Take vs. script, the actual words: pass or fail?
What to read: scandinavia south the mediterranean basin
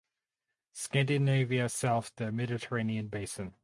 pass